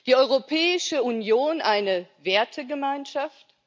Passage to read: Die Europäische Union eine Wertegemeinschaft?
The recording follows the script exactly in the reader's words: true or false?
true